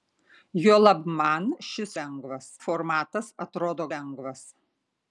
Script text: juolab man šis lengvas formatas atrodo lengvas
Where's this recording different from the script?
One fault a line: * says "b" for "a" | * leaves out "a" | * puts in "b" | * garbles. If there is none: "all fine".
all fine